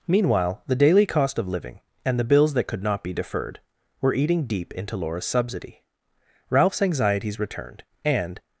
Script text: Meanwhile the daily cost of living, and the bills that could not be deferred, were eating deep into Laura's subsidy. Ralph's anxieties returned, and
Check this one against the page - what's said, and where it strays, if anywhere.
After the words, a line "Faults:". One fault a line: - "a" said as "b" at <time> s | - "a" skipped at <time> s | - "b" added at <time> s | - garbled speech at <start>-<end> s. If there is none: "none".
Meanwhile the daily cost of living, and the bills that could not be deferred, were eating deep into Laura's subsidy. Ralph's anxieties returned, and
Faults:
none